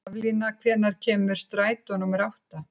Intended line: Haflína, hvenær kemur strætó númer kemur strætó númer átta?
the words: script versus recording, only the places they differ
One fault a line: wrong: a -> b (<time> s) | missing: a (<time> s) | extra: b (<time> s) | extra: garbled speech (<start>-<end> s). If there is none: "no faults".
missing: kemur strætó númer (2.3 s)